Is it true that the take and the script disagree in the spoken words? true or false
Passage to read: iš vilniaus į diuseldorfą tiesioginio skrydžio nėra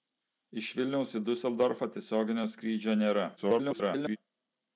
true